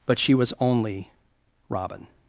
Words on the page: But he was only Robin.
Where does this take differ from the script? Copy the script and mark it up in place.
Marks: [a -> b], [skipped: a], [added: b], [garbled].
But [he -> she] was only Robin.